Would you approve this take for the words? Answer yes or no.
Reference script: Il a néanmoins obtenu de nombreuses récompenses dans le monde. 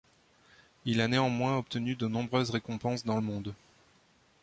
yes